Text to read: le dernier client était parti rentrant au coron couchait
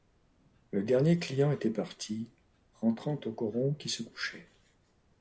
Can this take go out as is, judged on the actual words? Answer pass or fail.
fail